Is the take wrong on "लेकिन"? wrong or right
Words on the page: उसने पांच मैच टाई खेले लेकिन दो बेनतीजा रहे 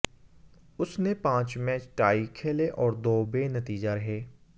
wrong